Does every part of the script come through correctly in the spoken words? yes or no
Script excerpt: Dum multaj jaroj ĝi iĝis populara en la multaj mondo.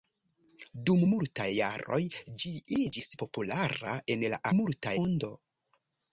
yes